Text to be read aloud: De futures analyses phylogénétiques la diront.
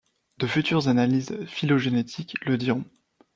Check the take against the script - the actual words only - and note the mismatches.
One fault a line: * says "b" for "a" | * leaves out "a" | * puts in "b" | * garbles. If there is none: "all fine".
* says "le" for "la"